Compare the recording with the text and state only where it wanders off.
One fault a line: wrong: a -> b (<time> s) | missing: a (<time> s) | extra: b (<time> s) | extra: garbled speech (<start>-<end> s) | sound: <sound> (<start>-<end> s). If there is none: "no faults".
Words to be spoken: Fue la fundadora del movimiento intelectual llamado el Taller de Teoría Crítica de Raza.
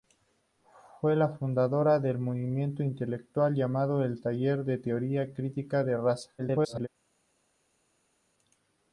extra: garbled speech (6.4-6.9 s)